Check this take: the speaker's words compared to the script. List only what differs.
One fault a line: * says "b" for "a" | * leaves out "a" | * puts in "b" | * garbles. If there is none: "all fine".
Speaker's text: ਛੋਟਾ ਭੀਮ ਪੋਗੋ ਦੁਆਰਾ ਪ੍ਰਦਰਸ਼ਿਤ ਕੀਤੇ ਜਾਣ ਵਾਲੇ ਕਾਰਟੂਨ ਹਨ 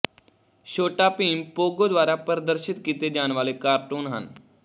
all fine